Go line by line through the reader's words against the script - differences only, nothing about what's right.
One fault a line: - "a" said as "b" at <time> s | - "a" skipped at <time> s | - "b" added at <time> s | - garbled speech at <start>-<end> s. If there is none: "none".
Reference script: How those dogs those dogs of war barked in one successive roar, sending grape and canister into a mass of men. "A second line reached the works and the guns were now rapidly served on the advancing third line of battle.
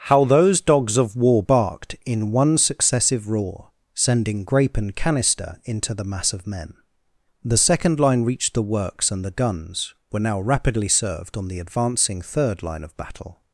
- "those dogs" skipped at 1.0 s
- "a" said as "the" at 5.9 s
- "A" said as "The" at 7.4 s